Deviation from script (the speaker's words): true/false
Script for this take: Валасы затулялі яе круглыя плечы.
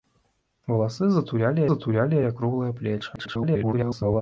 true